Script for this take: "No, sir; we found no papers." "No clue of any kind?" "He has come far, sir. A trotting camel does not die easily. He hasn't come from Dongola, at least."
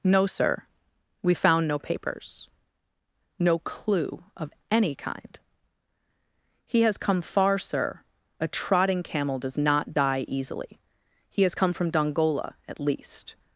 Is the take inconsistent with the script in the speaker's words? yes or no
yes